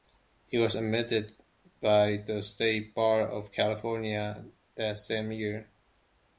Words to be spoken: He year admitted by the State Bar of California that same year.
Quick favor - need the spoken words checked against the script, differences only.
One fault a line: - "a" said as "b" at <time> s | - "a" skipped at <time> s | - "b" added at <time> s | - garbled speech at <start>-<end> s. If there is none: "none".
- "year" said as "was" at 0.6 s